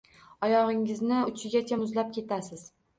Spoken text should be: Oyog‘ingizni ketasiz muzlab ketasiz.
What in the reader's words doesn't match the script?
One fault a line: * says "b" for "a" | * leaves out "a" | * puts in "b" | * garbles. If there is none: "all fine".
* says "uchigacha" for "ketasiz"